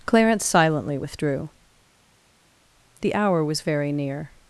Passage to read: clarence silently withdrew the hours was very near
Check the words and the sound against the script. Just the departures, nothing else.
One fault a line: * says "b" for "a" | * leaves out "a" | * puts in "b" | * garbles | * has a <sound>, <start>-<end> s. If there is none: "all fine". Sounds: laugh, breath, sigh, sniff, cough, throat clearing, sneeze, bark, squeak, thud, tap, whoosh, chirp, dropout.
* says "hour" for "hours"